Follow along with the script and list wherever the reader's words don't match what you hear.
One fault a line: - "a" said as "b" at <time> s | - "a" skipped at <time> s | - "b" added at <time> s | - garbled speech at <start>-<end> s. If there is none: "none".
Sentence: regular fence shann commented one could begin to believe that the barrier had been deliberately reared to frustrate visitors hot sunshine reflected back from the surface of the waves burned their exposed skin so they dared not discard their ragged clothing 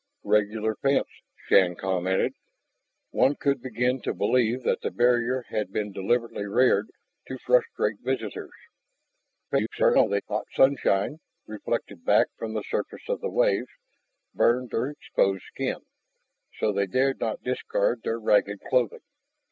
- garbled speech at 9.5-10.2 s